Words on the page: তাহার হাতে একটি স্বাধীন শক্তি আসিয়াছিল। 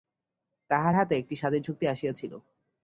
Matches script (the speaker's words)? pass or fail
pass